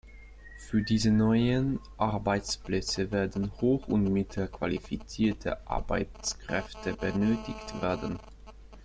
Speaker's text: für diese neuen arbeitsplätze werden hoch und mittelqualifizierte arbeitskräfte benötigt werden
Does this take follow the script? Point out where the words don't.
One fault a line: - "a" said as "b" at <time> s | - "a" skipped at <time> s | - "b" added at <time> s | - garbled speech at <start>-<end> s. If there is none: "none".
none